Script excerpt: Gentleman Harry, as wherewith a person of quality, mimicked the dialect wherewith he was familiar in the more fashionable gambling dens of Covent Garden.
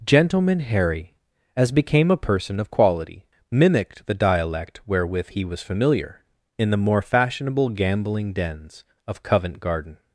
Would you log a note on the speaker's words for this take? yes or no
yes